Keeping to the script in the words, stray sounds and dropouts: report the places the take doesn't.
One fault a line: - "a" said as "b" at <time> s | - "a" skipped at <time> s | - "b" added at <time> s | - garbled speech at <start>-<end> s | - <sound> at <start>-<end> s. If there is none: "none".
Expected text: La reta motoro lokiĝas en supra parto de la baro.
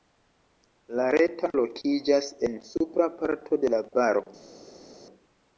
- "motoro" skipped at 1.5 s